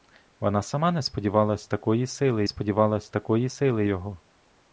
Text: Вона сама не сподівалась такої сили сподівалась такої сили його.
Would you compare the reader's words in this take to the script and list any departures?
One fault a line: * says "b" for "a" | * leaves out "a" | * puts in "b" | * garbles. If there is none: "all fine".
all fine